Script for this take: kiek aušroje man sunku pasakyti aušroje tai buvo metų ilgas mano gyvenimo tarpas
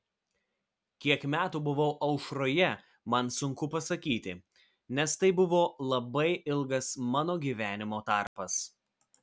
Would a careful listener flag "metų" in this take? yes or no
yes